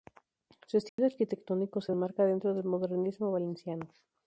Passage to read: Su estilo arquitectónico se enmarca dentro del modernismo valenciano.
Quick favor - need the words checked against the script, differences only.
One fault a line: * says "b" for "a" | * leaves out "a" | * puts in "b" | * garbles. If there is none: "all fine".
all fine